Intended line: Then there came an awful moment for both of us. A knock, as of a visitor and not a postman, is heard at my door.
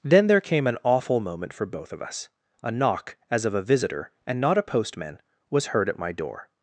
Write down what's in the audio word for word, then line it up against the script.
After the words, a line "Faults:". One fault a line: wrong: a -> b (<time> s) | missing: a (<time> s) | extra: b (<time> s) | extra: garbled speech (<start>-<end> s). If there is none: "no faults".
Then there came an awful moment for both of us. A knock, as of a visitor and not a postman, was heard at my door.
Faults:
wrong: is -> was (5.5 s)